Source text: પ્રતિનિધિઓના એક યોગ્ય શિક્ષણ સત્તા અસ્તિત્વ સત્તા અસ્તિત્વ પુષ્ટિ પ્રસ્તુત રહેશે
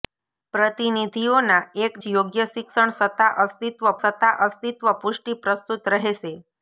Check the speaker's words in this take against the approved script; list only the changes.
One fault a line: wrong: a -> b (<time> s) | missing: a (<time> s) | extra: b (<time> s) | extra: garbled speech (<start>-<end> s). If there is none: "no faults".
no faults